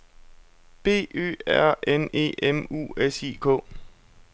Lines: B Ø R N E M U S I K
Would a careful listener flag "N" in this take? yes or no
no